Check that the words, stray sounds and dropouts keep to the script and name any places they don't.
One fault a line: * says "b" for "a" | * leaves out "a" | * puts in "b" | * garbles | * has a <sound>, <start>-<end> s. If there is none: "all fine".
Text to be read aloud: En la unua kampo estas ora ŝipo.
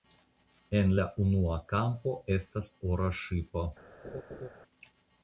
* has a laugh, 4.0-4.5 s